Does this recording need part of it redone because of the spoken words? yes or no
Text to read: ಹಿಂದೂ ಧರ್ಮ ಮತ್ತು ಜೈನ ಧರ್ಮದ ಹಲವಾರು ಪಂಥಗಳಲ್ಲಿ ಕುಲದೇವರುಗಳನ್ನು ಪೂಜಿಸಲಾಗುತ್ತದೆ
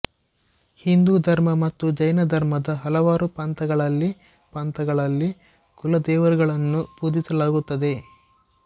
yes